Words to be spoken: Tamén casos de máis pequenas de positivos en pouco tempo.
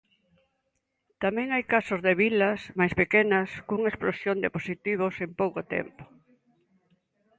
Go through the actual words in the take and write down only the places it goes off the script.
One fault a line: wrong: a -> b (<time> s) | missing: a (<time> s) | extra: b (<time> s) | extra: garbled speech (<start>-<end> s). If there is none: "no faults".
extra: hai (1.5 s)
extra: vilas (2.2 s)
extra: cunha explosión (3.7 s)